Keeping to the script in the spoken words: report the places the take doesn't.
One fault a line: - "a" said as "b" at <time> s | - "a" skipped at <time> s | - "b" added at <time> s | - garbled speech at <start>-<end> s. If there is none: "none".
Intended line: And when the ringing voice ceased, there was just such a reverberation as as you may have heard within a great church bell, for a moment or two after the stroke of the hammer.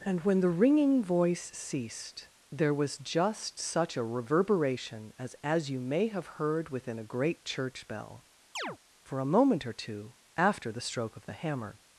none